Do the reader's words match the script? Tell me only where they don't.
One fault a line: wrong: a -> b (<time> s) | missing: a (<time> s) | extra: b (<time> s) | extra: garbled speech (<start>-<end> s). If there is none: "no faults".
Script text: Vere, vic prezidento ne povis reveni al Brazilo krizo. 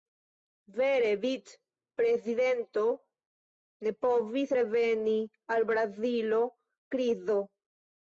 no faults